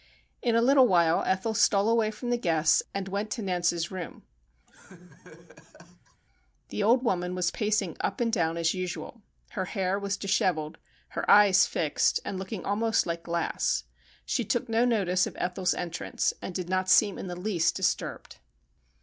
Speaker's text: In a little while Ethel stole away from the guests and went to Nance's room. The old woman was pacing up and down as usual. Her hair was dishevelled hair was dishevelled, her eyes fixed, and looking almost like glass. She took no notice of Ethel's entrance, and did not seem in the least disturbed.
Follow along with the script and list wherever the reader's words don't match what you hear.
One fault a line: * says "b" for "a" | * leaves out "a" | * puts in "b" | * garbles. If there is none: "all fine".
* leaves out "hair was dishevelled"